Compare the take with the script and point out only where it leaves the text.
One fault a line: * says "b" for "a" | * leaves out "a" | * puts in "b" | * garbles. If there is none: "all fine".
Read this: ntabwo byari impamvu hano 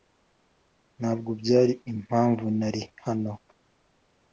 * puts in "nari"